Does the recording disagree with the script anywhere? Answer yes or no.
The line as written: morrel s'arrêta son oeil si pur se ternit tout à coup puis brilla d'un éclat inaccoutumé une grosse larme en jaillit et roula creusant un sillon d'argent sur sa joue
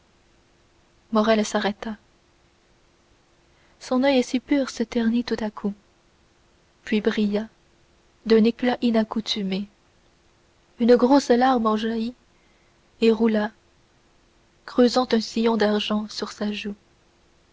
no